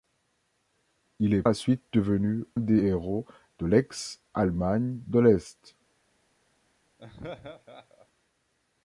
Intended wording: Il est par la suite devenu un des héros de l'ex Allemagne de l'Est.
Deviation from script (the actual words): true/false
true